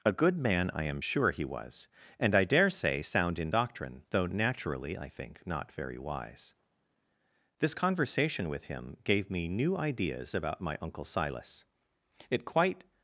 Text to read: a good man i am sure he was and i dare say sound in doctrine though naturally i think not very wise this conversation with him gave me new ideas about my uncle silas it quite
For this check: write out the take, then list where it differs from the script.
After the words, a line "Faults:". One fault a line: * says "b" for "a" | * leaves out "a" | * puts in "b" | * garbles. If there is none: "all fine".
a good man i am sure he was and i dare say sound in doctrine though naturally i think not very wise this conversation with him gave me new ideas about my uncle silas it quite
Faults:
all fine